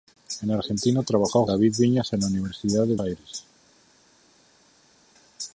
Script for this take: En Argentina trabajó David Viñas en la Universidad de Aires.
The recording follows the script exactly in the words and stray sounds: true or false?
true